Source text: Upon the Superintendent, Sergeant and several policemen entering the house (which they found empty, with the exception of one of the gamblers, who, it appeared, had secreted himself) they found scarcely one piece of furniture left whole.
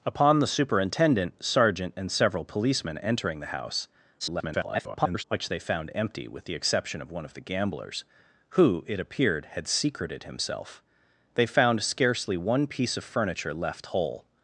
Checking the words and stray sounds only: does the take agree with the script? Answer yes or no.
no